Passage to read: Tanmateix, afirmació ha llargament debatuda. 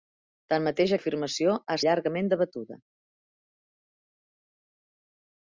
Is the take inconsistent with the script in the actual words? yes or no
no